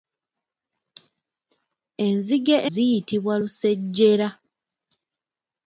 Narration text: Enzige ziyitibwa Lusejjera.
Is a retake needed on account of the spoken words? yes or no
no